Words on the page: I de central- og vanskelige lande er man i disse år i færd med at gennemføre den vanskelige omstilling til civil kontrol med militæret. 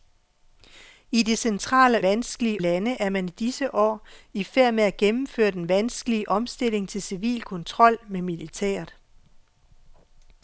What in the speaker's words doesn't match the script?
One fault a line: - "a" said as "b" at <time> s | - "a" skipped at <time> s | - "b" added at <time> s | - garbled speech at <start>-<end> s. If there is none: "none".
none